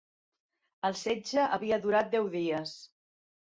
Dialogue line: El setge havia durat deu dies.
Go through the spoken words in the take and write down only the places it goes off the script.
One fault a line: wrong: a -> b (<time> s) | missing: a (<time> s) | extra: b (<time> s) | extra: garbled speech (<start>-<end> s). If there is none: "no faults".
no faults